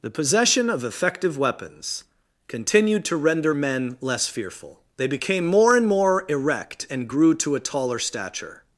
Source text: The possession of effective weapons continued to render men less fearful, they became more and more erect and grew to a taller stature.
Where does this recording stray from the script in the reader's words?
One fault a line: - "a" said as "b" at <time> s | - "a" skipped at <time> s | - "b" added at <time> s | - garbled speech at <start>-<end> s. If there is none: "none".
none